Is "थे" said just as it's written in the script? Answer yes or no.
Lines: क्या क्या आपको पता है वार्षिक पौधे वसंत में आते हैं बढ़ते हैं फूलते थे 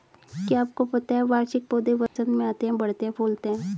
no